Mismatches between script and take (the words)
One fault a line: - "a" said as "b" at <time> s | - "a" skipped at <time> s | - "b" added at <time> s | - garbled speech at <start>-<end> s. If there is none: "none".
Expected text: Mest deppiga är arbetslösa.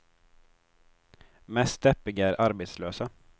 none